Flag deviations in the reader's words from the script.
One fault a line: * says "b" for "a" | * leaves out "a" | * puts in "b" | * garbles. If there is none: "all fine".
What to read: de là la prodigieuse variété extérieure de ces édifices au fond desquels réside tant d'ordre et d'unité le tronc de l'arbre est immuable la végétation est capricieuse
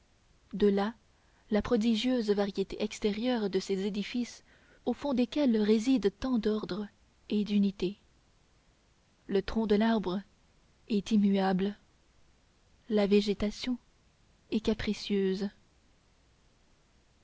all fine